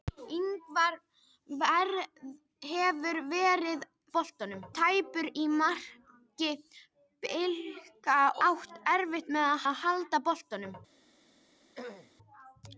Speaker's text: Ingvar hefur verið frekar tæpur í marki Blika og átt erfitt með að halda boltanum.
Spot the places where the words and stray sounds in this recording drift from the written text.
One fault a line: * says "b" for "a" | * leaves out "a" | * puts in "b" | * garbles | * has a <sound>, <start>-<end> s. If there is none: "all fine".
* says "boltanum" for "frekar"
* leaves out "og"
* puts in "að"
* has a throat clearing, 11.8-12.2 s